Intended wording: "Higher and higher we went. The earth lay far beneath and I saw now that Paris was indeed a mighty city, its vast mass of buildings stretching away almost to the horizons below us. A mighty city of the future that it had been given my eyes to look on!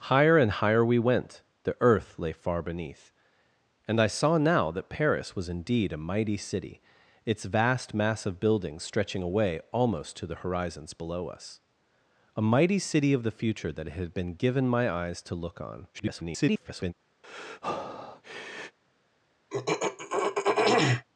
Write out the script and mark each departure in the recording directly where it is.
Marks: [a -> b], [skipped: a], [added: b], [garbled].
"Higher and higher we went. The earth lay far beneath and I saw now that Paris was indeed a mighty city, its vast mass of buildings stretching away almost to the horizons below us. A mighty city of the future that it had been given my eyes to look on! [garbled]